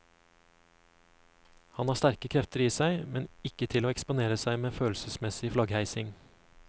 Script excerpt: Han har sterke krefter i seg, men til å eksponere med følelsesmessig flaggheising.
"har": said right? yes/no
yes